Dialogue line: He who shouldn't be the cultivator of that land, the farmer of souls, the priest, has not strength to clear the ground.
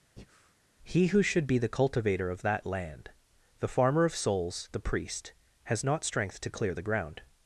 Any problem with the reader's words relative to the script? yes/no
yes